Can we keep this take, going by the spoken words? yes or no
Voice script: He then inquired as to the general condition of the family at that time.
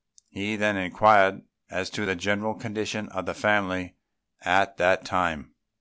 yes